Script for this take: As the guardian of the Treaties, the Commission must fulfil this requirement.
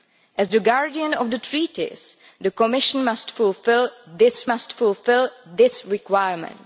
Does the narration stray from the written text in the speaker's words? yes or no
yes